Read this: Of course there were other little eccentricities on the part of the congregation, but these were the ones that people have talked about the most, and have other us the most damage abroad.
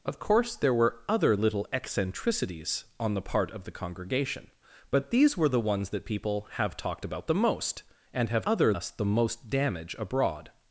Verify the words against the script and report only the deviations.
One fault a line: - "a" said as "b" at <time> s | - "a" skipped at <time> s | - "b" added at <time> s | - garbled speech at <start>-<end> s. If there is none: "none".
none